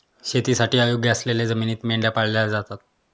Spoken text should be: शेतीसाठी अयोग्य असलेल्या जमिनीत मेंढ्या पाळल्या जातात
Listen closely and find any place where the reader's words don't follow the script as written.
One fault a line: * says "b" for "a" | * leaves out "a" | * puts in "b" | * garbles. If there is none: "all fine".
all fine